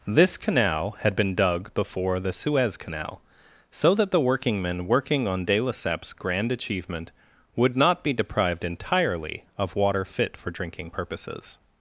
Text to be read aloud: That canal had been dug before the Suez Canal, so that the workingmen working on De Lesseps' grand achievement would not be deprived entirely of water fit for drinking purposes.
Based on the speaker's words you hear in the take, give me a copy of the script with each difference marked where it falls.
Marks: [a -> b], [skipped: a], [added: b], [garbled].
[That -> This] canal had been dug before the Suez Canal, so that the workingmen working on De Lesseps' grand achievement would not be deprived entirely of water fit for drinking purposes.